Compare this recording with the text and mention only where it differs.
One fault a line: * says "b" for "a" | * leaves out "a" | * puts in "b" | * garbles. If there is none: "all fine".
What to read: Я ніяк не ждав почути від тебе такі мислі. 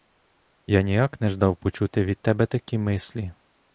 all fine